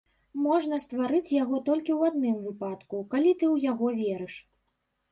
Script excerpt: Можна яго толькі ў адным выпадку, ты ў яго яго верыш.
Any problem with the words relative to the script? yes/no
yes